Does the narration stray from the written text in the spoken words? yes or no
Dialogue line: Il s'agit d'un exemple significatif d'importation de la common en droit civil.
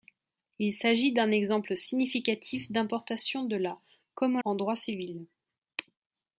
no